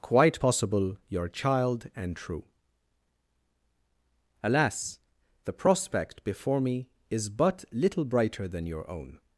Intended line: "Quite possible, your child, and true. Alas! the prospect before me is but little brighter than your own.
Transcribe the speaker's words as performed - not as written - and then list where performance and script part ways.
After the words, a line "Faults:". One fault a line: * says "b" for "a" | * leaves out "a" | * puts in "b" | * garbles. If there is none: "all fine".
"Quite possible, your child, and true. Alas! the prospect before me is but little brighter than your own.
Faults:
all fine